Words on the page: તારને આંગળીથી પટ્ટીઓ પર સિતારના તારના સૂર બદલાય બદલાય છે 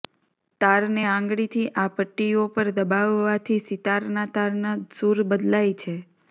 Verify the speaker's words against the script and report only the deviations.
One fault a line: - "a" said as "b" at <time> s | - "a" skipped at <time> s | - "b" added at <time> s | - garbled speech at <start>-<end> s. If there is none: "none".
- "આ" added at 1.8 s
- "દબાવવાથી" added at 2.8 s
- "બદલાય" skipped at 5.8 s